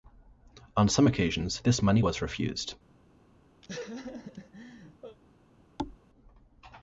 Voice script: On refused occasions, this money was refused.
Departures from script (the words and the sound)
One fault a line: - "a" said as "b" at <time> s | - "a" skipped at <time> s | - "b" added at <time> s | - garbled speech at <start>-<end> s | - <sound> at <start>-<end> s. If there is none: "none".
- "refused" said as "some" at 0.9 s
- laugh at 3.6-5.2 s
- thud at 5.8-6.0 s